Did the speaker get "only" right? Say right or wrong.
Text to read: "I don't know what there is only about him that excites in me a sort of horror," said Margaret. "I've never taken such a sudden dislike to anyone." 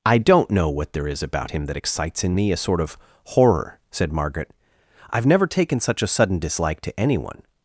wrong